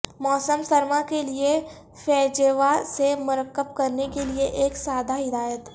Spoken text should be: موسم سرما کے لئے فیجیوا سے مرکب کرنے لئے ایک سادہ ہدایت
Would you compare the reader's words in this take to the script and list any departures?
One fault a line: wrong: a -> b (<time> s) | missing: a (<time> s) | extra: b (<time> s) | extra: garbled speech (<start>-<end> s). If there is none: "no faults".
extra: کے (4.1 s)